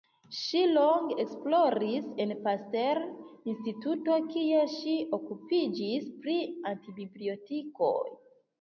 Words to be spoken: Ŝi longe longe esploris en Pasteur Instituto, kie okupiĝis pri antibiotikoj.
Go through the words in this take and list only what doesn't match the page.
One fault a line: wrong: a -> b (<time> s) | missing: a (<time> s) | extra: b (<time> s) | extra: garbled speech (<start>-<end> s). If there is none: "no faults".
missing: longe (1.2 s)
extra: ŝi (4.8 s)